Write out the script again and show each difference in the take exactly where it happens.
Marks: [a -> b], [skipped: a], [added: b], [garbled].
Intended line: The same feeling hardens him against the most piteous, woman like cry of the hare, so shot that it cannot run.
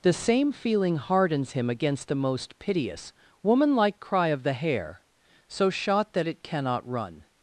The same feeling hardens him against the most piteous, woman like cry of the hare, so shot that it cannot run.